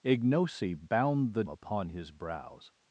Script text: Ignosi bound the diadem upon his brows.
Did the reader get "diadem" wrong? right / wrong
wrong